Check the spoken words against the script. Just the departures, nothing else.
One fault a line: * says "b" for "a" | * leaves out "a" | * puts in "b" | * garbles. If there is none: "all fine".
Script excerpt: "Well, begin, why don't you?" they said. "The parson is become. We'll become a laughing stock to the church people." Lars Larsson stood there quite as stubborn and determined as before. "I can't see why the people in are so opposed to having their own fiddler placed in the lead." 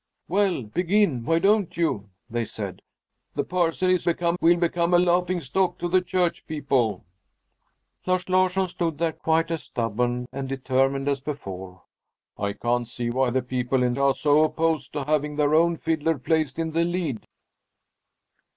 all fine